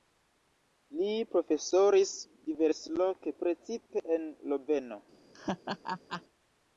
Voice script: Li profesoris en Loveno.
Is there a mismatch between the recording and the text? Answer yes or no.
yes